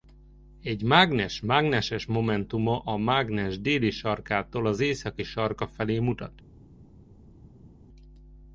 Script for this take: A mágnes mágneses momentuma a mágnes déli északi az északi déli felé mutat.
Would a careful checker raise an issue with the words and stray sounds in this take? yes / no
yes